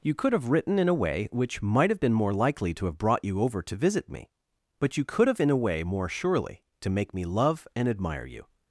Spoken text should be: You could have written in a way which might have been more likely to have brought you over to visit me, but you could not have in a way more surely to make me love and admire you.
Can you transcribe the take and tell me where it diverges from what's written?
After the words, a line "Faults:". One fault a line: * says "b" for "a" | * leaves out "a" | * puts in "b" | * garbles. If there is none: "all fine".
You could have written in a way which might have been more likely to have brought you over to visit me, but you could have in a way more surely to make me love and admire you.
Faults:
* leaves out "not"